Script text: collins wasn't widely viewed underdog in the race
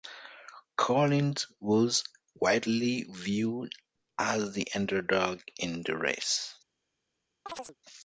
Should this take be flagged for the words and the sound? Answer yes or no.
yes